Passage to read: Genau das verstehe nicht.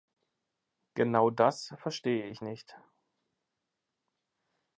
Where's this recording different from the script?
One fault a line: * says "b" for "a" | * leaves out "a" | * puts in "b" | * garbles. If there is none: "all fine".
* puts in "ich"